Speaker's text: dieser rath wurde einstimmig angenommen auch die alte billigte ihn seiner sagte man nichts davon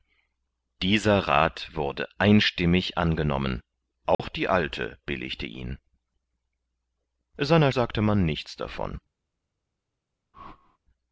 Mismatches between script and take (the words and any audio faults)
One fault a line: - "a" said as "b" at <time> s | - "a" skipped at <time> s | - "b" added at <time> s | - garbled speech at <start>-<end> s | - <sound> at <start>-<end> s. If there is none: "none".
- dropout at 4.1-4.2 s
- whoosh at 10.3-10.8 s